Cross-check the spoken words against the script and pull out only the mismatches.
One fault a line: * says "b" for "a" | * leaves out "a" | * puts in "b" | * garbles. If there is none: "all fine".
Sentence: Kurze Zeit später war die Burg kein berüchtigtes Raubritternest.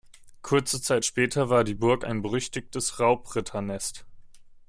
* says "ein" for "kein"